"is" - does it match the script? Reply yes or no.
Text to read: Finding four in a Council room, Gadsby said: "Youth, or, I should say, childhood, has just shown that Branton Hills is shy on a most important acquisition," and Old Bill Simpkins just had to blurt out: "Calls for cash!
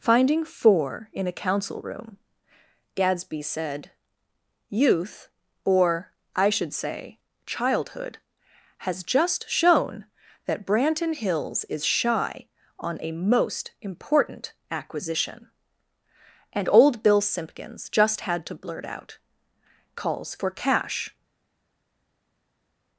yes